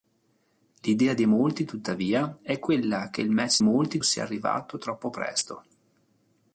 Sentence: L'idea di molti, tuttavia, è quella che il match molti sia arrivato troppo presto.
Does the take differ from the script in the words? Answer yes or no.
no